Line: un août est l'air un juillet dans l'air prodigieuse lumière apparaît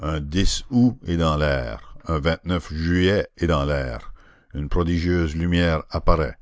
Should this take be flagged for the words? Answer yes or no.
yes